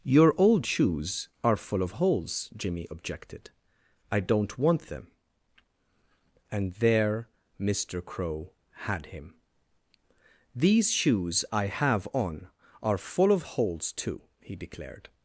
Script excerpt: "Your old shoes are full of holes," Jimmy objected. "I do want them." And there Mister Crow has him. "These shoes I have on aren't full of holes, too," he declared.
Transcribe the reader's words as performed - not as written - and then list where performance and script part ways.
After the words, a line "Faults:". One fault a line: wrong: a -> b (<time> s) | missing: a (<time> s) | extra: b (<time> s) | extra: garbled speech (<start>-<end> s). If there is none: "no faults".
"Your old shoes are full of holes," Jimmy objected. "I don't want them." And there Mister Crow had him. "These shoes I have on are full of holes, too," he declared.
Faults:
wrong: do -> don't (4.2 s)
wrong: has -> had (8.9 s)
wrong: aren't -> are (12.8 s)